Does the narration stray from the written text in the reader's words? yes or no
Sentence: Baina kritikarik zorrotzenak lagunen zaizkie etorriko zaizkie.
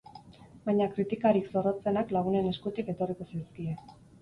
yes